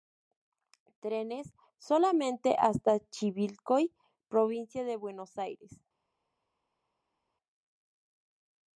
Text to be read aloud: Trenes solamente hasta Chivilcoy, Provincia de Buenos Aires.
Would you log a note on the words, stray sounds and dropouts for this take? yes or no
no